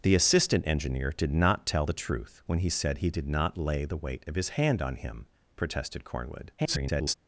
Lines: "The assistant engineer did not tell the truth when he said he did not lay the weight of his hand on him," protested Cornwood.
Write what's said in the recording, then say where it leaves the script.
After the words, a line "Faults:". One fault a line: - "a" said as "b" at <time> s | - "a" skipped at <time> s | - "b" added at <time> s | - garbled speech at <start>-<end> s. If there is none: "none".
"The assistant engineer did not tell the truth when he said he did not lay the weight of his hand on him," protested Cornwood. [garbled]
Faults:
- garbled speech at 6.6-7.1 s